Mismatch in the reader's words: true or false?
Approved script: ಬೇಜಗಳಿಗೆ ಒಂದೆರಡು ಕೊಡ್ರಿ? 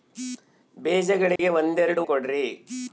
false